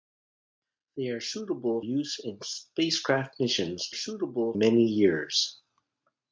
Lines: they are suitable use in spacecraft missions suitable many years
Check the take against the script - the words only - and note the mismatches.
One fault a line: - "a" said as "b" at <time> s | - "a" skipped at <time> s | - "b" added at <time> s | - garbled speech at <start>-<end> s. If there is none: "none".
none